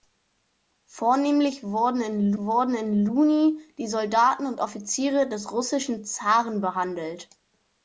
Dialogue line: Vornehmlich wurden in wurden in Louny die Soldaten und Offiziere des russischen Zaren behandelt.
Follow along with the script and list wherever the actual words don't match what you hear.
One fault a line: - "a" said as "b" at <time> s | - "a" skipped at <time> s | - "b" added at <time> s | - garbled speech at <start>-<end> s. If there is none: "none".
none